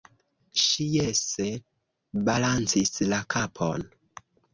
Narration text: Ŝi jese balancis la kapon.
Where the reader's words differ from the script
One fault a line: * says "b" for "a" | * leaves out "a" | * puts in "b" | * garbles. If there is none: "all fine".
all fine